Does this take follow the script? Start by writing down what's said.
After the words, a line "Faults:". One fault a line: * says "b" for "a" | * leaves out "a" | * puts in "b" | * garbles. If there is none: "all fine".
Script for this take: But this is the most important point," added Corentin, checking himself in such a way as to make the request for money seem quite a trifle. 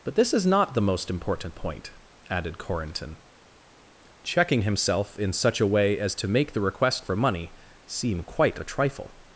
But this is not the most important point," added Corentin, checking himself in such a way as to make the request for money seem quite a trifle.
Faults:
* puts in "not"